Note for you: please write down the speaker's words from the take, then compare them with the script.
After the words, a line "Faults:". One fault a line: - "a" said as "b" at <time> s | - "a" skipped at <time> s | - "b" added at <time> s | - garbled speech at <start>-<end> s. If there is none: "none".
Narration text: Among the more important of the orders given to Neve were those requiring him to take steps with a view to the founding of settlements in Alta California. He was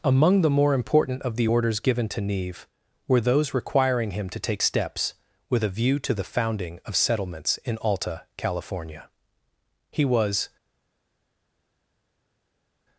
Among the more important of the orders given to Neve were those requiring him to take steps with a view to the founding of settlements in Alta California. He was
Faults:
none